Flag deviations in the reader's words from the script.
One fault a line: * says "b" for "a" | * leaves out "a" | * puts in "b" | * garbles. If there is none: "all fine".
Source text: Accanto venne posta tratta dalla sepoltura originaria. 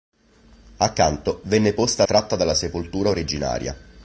all fine